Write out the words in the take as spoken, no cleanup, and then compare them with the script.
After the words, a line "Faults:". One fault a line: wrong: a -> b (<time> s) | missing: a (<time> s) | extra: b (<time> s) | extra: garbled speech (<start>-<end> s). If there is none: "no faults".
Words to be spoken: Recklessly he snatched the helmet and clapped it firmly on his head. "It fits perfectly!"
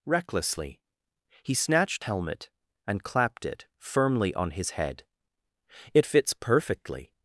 Recklessly he snatched helmet and clapped it firmly on his head. "It fits perfectly!"
Faults:
missing: the (2.0 s)